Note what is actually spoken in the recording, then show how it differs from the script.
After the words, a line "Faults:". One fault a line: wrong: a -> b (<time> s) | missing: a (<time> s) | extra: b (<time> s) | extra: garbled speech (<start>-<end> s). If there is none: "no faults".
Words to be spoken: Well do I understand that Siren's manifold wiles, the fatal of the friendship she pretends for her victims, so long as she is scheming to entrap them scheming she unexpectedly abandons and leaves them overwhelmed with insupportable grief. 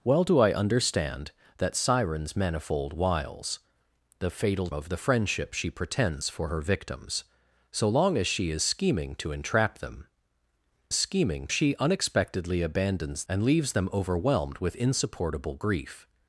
Well do I understand that Siren's manifold wiles, the fatal of the friendship she pretends for her victims, so long as she is scheming to entrap them scheming she unexpectedly abandons and leaves them overwhelmed with insupportable grief.
Faults:
no faults